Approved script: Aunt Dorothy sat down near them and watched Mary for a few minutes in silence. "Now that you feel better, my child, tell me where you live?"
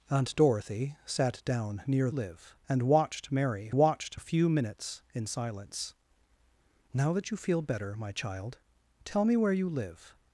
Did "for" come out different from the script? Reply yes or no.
yes